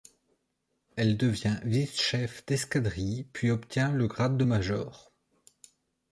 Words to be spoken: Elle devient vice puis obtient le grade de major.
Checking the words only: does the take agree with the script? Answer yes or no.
no